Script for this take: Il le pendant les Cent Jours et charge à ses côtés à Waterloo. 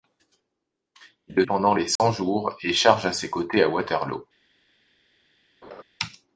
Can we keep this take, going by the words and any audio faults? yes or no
no